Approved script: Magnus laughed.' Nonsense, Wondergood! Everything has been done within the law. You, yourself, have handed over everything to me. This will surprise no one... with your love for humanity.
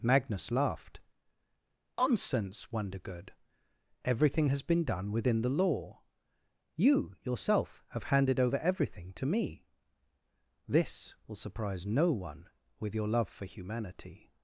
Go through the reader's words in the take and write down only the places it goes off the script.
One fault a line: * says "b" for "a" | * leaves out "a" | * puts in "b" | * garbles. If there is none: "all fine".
all fine